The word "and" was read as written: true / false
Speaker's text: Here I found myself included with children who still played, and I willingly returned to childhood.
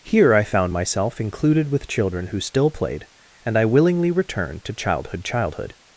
true